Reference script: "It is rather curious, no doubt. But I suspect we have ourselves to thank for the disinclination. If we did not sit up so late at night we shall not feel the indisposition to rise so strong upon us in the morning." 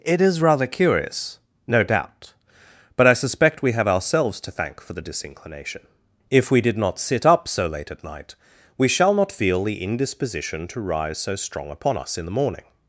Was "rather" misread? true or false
false